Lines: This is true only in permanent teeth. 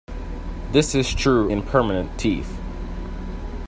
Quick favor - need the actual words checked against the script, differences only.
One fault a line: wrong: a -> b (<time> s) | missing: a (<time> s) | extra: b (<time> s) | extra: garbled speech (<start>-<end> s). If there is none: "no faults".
missing: only (1.5 s)